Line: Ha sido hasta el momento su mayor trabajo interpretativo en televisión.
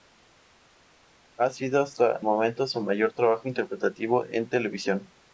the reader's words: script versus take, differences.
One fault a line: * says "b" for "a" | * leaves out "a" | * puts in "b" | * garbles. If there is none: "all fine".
* leaves out "el"